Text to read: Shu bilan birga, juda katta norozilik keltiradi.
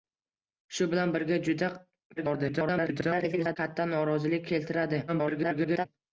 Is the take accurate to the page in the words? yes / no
no